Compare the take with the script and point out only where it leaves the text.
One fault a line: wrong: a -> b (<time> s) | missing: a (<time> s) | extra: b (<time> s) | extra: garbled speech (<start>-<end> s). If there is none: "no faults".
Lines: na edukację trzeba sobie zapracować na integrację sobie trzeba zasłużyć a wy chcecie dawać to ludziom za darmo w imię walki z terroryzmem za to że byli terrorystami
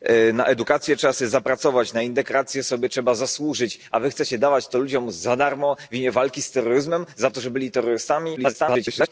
extra: garbled speech (8.4-9.1 s)